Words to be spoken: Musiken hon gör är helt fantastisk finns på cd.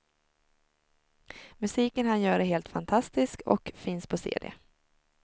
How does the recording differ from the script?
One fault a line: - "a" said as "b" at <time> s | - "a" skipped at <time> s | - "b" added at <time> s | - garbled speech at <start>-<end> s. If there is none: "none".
- "hon" said as "han" at 2.1 s
- "och" added at 3.5 s